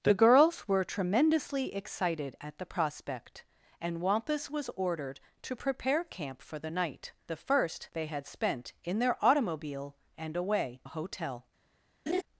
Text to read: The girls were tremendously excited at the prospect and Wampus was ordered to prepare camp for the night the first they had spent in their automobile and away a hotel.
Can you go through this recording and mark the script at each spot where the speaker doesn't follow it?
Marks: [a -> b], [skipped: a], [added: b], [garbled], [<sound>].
The girls were tremendously excited at the prospect and Wampus was ordered to prepare camp for the night the first they had spent in their automobile and away a hotel. [laugh]